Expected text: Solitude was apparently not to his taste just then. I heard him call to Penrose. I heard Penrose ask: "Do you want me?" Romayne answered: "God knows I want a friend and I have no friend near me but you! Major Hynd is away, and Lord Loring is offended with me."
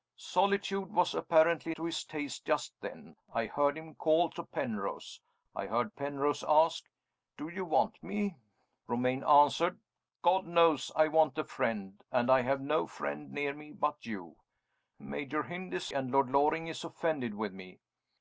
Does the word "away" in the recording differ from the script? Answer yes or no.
yes